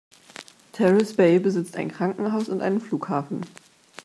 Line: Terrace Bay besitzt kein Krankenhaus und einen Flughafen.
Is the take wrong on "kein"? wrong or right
wrong